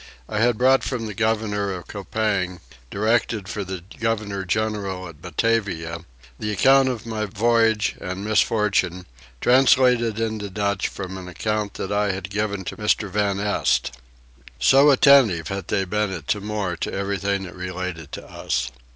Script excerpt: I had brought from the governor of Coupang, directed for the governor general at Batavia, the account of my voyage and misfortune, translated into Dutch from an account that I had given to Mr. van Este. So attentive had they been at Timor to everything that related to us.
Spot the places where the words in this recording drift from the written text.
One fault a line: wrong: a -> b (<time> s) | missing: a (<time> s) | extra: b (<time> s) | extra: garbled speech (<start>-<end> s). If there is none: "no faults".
no faults